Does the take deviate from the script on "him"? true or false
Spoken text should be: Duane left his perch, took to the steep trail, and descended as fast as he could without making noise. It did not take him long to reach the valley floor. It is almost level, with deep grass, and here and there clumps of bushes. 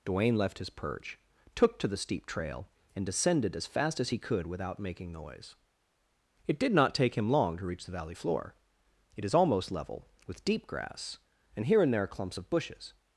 false